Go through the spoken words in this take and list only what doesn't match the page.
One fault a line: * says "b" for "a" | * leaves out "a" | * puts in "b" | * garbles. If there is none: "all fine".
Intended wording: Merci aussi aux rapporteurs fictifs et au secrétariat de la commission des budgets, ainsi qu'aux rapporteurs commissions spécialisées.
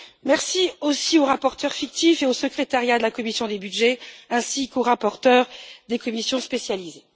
* puts in "des"